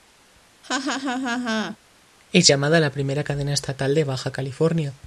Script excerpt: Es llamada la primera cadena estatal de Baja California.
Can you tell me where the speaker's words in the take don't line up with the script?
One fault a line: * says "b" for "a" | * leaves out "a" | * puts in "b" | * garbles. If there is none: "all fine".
all fine